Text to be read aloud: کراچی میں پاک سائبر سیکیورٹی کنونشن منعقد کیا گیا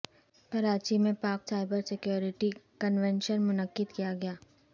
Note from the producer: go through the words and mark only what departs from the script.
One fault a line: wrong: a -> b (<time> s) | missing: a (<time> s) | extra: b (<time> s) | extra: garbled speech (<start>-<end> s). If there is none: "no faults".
no faults